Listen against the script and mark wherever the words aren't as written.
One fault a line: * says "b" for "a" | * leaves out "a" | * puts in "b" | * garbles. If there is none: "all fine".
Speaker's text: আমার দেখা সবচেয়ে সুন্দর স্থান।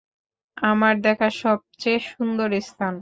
all fine